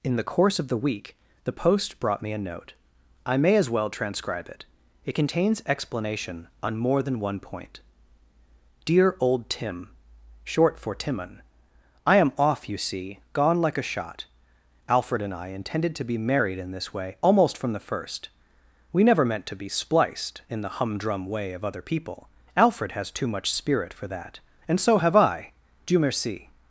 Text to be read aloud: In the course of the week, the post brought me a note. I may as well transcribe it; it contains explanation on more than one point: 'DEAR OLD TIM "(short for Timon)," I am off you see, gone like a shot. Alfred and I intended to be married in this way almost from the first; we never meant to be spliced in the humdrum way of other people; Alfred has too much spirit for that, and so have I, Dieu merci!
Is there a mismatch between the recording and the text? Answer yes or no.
no